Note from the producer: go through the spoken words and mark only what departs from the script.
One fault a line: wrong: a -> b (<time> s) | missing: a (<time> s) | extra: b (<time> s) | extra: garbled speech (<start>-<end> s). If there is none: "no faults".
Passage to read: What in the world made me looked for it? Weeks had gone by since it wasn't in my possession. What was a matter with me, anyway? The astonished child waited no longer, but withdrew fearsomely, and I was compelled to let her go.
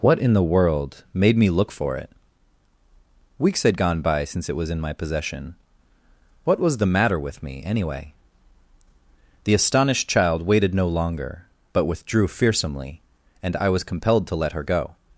wrong: looked -> look (1.5 s)
wrong: wasn't -> was (4.5 s)
wrong: a -> the (6.8 s)